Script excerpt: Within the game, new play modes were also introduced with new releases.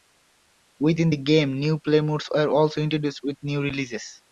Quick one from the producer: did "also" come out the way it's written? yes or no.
yes